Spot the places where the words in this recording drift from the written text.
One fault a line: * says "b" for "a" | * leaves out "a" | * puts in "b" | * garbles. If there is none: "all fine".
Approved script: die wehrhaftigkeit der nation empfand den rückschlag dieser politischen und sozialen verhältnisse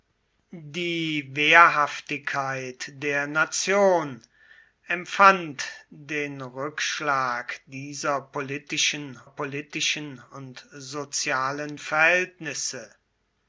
* puts in "politischen"